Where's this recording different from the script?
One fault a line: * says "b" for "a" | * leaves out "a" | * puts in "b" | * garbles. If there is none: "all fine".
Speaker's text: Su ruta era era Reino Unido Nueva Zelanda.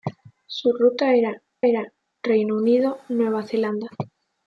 all fine